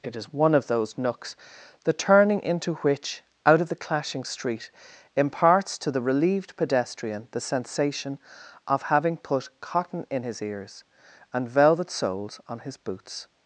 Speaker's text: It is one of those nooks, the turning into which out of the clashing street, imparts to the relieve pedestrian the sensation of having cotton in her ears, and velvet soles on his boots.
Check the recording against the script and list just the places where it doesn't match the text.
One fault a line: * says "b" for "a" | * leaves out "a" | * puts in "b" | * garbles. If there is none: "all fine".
* says "relieved" for "relieve"
* puts in "put"
* says "his" for "her"